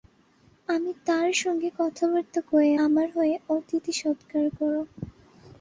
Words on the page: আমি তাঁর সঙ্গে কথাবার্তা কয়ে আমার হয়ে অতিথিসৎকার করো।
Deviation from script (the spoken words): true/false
false